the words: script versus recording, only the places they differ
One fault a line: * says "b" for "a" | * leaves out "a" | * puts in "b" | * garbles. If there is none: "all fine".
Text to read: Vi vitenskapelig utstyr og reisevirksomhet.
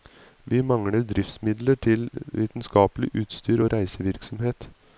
* puts in "mangler driftsmidler til"